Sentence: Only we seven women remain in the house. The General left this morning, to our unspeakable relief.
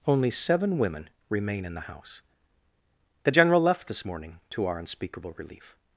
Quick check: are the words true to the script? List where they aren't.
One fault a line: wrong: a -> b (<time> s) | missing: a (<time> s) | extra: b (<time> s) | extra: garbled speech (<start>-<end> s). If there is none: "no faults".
missing: we (0.3 s)